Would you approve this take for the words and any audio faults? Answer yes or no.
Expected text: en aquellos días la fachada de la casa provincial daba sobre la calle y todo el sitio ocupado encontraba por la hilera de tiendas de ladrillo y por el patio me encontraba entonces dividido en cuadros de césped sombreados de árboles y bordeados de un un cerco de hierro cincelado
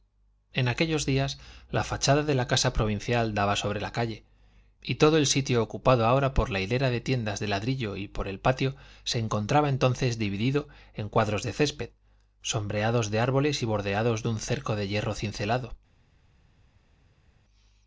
no